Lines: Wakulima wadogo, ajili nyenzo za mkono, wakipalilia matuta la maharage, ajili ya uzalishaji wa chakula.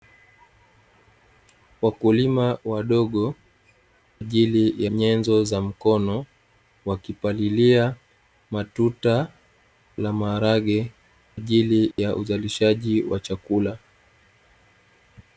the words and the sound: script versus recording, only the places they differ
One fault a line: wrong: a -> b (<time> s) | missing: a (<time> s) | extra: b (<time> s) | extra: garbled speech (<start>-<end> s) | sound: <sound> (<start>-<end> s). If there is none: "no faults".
sound: dropout (11.9-12.0 s)